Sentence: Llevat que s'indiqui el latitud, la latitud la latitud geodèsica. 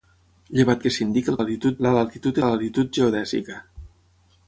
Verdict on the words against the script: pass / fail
pass